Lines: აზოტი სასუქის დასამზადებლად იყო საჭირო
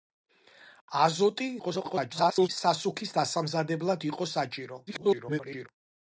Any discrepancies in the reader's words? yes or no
yes